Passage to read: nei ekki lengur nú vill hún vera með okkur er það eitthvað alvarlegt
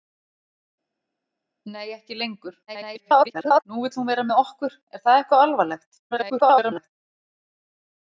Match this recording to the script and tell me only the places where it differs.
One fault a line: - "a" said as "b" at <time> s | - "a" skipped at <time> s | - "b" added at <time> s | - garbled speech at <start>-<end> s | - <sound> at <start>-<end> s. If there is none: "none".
- garbled speech at 2.7-3.6 s
- garbled speech at 6.1-6.9 s